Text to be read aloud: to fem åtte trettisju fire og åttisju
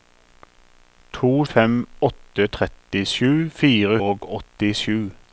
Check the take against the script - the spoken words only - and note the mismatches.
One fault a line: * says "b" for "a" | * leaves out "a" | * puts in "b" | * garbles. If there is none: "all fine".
all fine